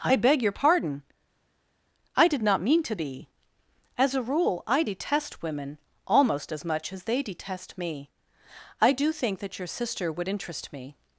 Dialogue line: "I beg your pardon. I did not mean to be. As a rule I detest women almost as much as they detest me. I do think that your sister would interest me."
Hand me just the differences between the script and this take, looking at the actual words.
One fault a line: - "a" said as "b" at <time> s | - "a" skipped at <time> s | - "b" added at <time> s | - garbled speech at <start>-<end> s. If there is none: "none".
none